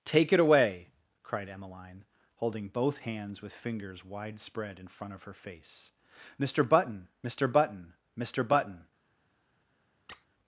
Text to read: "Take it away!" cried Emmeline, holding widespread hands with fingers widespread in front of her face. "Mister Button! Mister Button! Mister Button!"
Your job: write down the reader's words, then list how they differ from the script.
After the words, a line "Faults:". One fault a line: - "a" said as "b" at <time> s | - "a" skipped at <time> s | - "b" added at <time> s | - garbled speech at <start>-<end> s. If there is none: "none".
"Take it away!" cried Emmeline, holding both hands with fingers widespread in front of her face. "Mister Button! Mister Button! Mister Button!"
Faults:
- "widespread" said as "both" at 2.7 s